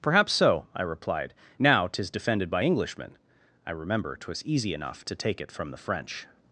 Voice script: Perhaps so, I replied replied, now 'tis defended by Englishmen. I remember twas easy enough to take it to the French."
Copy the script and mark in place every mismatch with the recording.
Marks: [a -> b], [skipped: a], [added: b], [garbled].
Perhaps so, I replied [skipped: replied,] now 'tis defended by Englishmen. I remember twas easy enough to take it [to -> from] the French."